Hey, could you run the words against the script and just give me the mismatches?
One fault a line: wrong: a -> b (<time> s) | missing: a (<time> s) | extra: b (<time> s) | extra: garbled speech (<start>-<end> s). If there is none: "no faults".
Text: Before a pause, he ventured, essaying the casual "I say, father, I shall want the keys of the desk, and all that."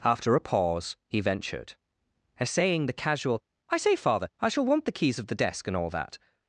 wrong: Before -> After (0.0 s)